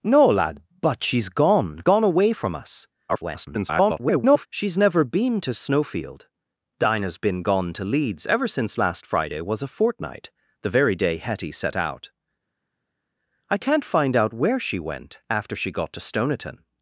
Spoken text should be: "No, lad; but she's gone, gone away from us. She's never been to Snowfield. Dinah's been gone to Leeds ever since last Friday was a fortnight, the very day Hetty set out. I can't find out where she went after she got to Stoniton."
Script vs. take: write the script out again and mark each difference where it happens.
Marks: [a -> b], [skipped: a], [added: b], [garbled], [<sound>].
"No, lad; but she's gone, gone away from us. [garbled] She's never been to Snowfield. Dinah's been gone to Leeds ever since last Friday was a fortnight, the very day Hetty set out. I can't find out where she went after she got to Stoniton."